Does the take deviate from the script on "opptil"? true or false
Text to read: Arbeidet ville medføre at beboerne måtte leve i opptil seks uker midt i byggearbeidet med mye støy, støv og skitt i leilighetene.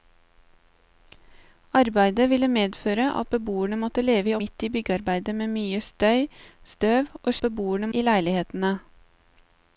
true